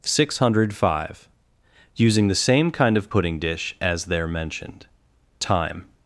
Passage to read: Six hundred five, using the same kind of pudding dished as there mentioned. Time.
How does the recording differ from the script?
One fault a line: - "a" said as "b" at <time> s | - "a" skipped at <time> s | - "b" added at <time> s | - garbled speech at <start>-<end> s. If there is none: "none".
- "dished" said as "dish" at 3.4 s